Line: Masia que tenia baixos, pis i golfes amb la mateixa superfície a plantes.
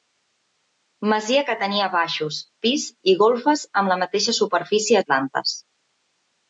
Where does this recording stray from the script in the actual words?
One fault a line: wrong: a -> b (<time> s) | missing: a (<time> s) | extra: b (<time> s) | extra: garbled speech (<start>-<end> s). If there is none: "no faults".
no faults